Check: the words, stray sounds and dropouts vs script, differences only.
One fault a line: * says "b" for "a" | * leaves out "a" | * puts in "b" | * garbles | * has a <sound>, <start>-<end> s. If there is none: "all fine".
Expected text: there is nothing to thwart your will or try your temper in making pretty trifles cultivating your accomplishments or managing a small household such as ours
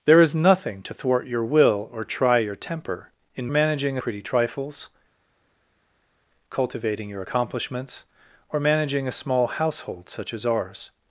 * says "managing" for "making"